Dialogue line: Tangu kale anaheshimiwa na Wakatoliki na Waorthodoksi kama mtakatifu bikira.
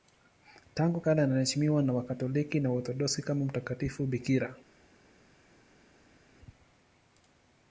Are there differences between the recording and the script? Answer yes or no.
no